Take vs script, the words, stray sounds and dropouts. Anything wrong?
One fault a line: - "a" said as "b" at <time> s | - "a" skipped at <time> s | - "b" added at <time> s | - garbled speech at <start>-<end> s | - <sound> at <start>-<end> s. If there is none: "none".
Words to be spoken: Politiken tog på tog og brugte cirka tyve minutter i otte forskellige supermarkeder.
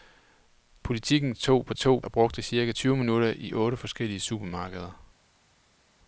none